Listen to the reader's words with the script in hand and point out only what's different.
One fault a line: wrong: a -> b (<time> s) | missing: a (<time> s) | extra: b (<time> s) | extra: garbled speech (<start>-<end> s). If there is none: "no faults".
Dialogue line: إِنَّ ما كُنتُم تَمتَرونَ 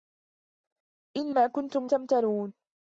no faults